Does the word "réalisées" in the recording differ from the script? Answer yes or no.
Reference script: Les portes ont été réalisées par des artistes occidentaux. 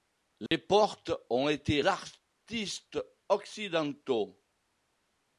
yes